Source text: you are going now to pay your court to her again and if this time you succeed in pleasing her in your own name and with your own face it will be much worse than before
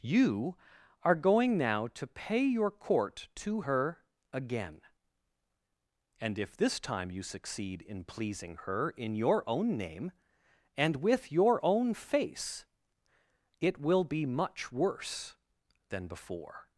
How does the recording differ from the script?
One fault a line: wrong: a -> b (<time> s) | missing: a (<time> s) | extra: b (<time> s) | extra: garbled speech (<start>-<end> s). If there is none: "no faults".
no faults